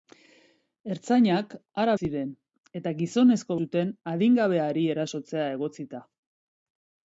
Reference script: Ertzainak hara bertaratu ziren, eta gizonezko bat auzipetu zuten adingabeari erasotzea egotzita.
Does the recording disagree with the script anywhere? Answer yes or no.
yes